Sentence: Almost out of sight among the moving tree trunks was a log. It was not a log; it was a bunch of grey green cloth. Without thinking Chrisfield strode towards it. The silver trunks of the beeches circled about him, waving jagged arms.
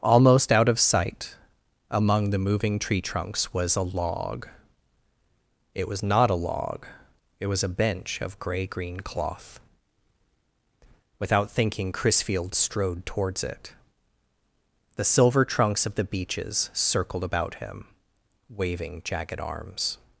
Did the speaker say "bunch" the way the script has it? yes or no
no